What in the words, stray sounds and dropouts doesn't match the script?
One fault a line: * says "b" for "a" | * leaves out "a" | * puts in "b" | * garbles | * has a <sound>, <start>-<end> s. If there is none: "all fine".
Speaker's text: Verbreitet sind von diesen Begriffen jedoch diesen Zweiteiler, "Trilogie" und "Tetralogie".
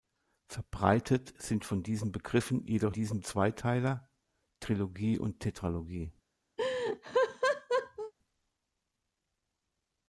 * has a laugh, 6.6-8.1 s